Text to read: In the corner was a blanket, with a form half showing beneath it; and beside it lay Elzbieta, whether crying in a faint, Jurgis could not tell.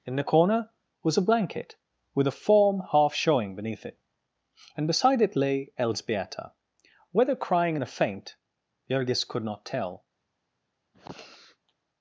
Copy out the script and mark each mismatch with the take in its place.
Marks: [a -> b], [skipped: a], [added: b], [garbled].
In the corner was a blanket, with a form half showing beneath it; and beside it lay Elzbieta, whether crying in a faint, Jurgis could not tell.